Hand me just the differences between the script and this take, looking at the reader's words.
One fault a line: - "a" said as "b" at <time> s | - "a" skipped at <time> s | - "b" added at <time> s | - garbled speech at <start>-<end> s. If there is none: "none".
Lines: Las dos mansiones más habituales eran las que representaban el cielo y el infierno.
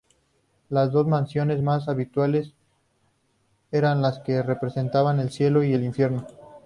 none